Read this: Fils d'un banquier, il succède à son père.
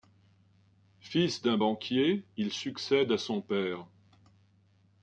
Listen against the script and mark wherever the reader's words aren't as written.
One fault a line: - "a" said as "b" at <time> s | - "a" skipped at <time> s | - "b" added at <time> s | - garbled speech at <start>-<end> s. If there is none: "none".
none